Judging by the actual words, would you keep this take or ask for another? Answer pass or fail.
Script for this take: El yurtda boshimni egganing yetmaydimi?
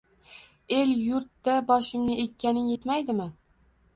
pass